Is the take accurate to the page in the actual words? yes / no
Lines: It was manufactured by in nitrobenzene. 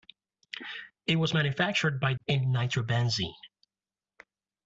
yes